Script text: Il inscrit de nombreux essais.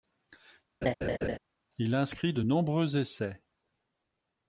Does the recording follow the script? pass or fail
pass